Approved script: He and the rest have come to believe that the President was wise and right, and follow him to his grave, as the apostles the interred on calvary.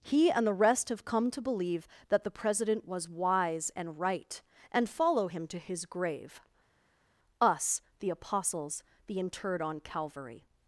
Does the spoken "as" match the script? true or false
false